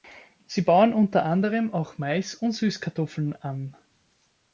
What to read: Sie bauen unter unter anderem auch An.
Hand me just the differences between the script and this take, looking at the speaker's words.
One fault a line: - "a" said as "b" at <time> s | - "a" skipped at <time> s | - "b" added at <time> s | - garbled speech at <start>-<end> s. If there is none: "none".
- "unter" skipped at 1.2 s
- "Mais und Süßkartoffeln" added at 2.0 s